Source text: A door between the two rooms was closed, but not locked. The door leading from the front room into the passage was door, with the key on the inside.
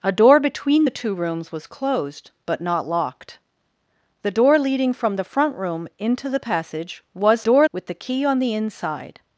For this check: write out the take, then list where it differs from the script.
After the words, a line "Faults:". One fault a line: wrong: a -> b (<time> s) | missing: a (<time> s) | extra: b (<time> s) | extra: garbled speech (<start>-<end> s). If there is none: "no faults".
A door between the two rooms was closed, but not locked. The door leading from the front room into the passage was door, with the key on the inside.
Faults:
no faults